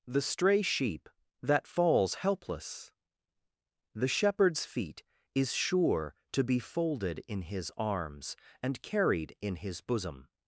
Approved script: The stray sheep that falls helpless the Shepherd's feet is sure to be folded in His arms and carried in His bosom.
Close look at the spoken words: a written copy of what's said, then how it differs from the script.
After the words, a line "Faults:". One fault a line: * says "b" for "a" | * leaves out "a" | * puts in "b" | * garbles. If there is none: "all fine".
The stray sheep that falls helpless the Shepherd's feet is sure to be folded in His arms and carried in His bosom.
Faults:
all fine